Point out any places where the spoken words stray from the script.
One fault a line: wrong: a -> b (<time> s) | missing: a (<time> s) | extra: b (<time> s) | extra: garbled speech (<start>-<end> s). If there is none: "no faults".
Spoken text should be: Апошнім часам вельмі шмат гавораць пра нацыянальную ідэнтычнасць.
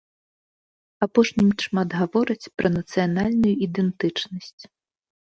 missing: часам вельмі (1.5 s)